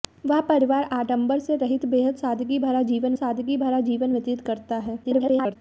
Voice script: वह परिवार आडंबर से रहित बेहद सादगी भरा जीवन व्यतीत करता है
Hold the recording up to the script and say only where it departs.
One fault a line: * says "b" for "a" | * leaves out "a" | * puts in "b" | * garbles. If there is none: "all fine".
* puts in "सादगी भरा जीवन"
* garbles